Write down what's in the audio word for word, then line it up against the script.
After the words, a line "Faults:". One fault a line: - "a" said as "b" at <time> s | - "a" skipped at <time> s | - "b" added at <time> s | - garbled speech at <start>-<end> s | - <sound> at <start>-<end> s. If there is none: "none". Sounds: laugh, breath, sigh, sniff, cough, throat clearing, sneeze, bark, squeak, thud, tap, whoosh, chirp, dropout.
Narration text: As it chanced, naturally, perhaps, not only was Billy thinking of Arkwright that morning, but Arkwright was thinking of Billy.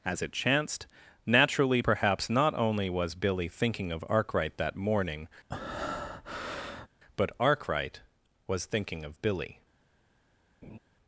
As it chanced, naturally, perhaps, not only was Billy thinking of Arkwright that morning, but Arkwright was thinking of Billy.
Faults:
- breath at 5.5-6.9 s
- laugh at 10.6-10.8 s